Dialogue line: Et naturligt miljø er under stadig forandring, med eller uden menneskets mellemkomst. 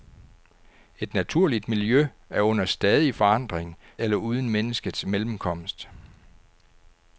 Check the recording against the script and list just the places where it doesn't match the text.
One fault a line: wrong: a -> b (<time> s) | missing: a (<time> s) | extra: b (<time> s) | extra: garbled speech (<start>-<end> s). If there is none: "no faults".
missing: med (3.8 s)